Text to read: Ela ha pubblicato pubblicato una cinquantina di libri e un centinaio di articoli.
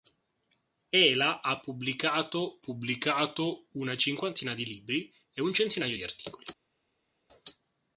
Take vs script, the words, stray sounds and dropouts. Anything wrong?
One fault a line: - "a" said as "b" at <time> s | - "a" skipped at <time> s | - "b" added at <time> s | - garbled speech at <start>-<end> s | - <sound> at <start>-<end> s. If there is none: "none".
none